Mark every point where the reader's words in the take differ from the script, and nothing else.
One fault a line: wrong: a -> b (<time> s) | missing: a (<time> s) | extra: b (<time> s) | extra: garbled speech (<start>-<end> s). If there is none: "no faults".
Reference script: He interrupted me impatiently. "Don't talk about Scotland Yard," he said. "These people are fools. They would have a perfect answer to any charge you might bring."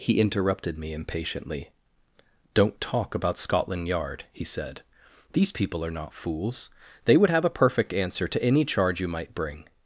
extra: not (5.9 s)